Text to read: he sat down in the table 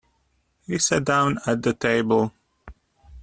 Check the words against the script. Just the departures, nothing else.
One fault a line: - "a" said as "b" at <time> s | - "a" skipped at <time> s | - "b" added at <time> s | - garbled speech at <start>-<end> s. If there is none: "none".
- "in" said as "at" at 1.4 s